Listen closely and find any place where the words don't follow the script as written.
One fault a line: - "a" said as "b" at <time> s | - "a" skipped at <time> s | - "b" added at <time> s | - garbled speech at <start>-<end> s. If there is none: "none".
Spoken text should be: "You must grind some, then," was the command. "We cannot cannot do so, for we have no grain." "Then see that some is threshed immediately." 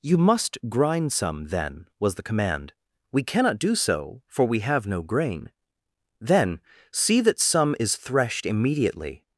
- "cannot" skipped at 3.6 s